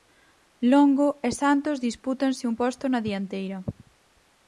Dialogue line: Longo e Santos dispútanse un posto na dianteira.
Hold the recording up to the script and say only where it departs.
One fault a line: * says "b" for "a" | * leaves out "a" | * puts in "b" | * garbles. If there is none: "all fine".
all fine